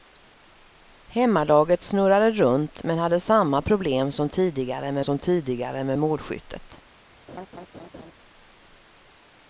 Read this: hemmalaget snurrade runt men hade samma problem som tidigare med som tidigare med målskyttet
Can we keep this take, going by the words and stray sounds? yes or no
no